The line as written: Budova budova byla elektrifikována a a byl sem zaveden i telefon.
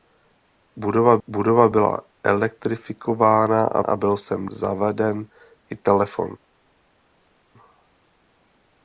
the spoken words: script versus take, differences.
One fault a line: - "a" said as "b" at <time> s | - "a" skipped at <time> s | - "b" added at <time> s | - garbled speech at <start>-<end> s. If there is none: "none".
none